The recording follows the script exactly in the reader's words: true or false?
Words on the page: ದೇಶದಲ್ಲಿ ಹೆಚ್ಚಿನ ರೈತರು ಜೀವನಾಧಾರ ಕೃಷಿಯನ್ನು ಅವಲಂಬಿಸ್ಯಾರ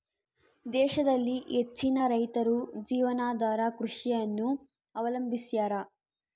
true